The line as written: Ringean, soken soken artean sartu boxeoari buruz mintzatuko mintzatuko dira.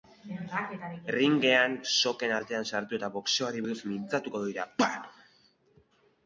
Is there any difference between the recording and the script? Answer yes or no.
yes